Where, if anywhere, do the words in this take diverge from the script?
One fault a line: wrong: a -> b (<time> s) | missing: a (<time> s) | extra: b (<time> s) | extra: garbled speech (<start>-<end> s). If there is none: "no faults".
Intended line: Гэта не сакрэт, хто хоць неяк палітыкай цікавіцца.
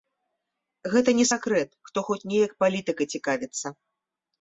no faults